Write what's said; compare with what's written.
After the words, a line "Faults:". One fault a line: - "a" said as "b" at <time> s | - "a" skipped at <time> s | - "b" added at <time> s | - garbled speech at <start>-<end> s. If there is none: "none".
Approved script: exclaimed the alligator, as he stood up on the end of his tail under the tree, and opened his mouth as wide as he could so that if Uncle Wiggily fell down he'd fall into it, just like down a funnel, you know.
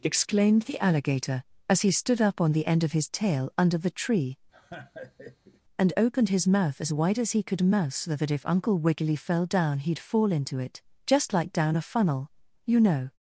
exclaimed the alligator, as he stood up on the end of his tail under the tree, and opened his mouth as wide as he could mouse so that if Uncle Wiggily fell down he'd fall into it, just like down a funnel, you know.
Faults:
- "mouse" added at 7.6 s